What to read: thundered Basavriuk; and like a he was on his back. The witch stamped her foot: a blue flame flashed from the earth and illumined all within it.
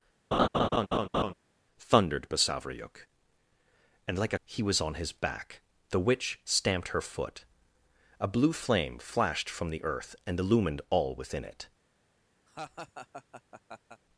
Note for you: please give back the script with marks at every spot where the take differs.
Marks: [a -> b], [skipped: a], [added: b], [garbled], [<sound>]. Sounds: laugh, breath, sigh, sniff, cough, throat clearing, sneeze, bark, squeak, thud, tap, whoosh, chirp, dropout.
[laugh] thundered Basavriuk; and like a he was on his back. The witch stamped her foot: a blue flame flashed from the earth and illumined all within it. [laugh]